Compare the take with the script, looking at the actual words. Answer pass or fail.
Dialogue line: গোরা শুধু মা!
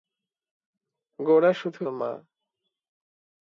pass